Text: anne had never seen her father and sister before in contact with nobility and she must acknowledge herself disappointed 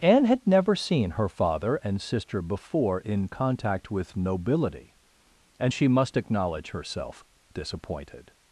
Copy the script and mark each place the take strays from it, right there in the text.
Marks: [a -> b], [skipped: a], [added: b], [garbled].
anne had never seen her father and sister before in contact with nobility and she must acknowledge herself disappointed